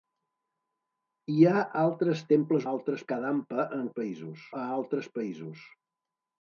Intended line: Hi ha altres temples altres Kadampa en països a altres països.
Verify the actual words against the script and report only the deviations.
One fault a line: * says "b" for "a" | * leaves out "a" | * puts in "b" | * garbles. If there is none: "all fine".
all fine